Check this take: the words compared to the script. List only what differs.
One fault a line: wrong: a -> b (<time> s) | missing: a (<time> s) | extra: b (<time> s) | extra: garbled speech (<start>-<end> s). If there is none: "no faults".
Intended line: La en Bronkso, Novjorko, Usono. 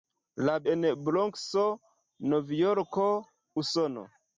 no faults